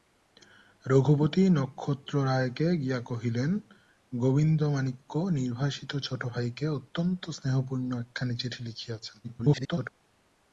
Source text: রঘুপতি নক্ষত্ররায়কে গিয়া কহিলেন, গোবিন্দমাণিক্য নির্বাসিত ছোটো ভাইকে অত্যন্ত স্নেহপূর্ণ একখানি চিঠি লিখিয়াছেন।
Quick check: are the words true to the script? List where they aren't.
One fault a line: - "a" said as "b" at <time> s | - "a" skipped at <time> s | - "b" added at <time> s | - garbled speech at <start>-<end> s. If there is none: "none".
- garbled speech at 9.2-9.9 s